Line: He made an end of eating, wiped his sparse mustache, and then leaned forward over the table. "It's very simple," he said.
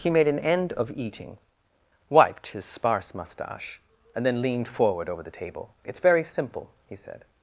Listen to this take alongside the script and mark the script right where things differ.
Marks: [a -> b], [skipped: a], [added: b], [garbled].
He made an end of eating, wiped his sparse mustache, and then leaned forward over the table. "It's very simple," he said.